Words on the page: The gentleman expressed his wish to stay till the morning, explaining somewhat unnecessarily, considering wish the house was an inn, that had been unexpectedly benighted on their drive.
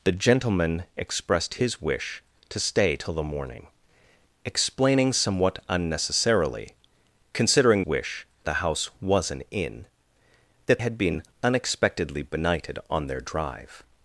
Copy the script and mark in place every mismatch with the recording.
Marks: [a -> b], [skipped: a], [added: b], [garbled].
The gentleman expressed his wish to stay till the morning, explaining somewhat unnecessarily, considering wish the house was an inn, that had been unexpectedly benighted on their drive.